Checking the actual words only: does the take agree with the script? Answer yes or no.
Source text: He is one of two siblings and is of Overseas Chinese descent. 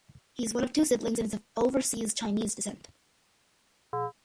yes